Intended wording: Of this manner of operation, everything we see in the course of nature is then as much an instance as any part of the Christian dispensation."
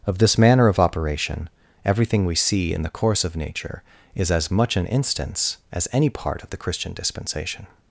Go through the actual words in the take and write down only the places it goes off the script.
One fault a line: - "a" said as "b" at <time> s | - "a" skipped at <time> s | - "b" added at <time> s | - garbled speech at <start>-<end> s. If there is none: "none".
- "then" skipped at 4.3 s